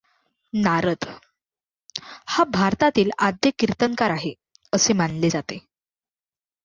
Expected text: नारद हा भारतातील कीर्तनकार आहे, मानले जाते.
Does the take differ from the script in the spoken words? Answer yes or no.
yes